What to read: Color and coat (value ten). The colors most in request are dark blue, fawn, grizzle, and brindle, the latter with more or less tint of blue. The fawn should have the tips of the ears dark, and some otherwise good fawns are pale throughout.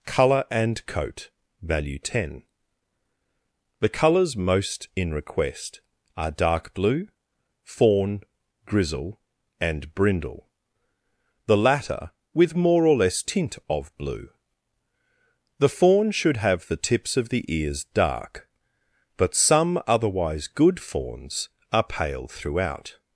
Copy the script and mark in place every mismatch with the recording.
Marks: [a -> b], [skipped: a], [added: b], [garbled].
Color and coat (value ten). The colors most in request are dark blue, fawn, grizzle, and brindle, the latter with more or less tint of blue. The fawn should have the tips of the ears dark, [and -> but] some otherwise good fawns are pale throughout.